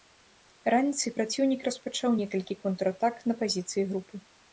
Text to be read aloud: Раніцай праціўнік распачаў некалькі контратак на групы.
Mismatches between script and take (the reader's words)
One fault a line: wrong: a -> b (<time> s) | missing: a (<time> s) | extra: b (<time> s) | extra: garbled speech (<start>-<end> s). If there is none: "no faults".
extra: пазіцыі (3.4 s)